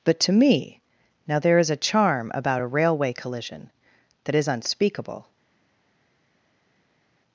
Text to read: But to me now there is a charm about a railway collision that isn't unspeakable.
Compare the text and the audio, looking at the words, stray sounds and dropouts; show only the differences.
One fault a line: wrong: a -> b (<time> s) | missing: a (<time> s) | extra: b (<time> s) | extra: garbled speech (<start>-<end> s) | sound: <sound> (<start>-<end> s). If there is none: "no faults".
wrong: isn't -> is (4.3 s)